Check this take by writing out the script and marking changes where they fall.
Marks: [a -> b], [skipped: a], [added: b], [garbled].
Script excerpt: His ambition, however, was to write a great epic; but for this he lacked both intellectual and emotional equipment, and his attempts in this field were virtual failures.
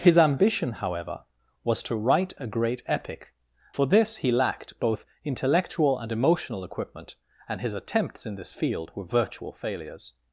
His ambition, however, was to write a great epic; [skipped: but] for this he lacked both intellectual and emotional equipment, and his attempts in this field were virtual failures.